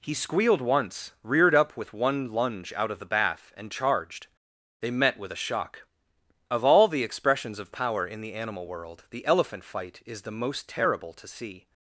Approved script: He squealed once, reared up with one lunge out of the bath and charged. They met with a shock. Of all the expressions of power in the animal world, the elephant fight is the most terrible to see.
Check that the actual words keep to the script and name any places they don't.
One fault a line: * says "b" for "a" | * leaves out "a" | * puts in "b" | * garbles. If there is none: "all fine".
all fine